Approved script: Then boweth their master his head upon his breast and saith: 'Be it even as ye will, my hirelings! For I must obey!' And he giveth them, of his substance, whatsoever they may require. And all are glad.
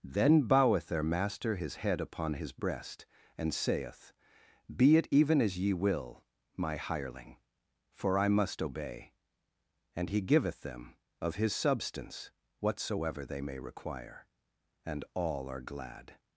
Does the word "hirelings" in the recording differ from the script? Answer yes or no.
yes